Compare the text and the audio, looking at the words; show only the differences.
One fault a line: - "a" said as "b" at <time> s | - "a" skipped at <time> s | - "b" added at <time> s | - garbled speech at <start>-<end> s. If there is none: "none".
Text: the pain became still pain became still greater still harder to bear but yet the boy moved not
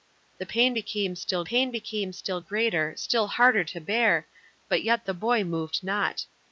none